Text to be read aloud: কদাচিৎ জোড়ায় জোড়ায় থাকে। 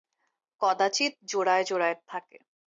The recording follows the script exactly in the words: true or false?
true